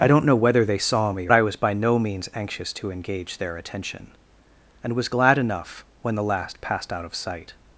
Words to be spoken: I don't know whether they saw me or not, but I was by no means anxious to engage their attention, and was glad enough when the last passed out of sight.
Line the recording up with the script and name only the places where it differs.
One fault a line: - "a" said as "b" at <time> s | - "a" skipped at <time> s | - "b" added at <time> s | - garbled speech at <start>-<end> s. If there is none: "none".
- "or not but" skipped at 1.3 s